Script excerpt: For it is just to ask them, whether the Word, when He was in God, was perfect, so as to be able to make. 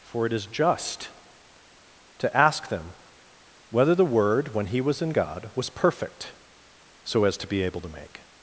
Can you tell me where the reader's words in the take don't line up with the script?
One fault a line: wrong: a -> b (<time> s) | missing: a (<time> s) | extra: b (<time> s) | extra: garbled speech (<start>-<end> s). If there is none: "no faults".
no faults